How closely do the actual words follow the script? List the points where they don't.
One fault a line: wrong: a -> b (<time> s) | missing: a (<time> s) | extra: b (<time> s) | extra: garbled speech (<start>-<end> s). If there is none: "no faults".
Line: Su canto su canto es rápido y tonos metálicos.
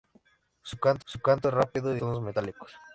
no faults